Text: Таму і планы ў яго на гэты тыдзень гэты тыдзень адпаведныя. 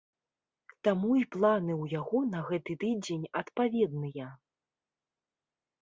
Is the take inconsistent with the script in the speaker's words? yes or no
yes